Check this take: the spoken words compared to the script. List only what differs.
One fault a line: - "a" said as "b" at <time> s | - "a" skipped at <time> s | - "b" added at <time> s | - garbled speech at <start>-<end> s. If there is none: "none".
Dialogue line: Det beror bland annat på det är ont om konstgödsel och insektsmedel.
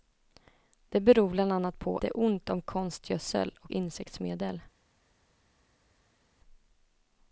none